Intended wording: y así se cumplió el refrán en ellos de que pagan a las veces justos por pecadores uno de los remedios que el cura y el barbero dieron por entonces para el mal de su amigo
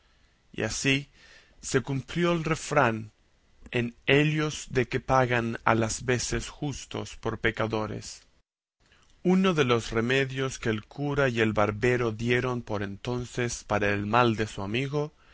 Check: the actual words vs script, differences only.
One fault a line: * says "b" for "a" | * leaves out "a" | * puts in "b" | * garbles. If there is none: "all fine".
all fine